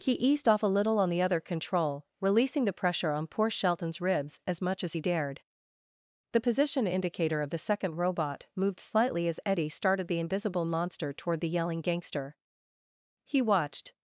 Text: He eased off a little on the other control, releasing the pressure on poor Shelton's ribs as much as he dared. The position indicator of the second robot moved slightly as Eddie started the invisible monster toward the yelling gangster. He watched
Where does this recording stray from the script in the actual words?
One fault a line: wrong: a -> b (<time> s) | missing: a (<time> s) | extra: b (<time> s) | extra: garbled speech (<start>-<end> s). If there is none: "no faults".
no faults